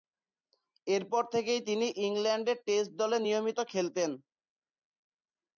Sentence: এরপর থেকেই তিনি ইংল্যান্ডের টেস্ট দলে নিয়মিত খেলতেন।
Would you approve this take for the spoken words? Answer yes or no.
yes